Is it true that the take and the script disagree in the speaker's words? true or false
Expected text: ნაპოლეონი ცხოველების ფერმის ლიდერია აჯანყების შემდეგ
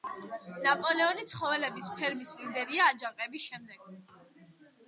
false